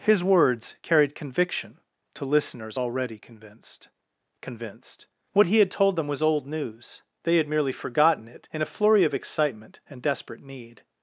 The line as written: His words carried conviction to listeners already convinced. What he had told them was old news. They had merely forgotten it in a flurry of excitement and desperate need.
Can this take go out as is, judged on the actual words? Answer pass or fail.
fail